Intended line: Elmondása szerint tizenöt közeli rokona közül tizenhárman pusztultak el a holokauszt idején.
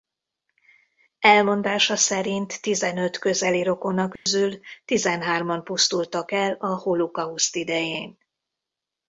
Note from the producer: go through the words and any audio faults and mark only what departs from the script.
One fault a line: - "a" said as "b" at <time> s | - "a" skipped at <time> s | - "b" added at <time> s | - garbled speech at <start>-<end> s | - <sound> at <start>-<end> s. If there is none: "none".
- dropout at 4.2-4.3 s